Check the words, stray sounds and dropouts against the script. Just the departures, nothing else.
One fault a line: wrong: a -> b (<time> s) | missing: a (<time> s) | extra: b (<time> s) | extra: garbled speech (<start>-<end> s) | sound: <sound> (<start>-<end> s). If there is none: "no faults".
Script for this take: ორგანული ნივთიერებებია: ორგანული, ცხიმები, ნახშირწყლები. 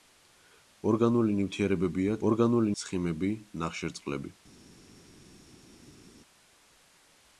no faults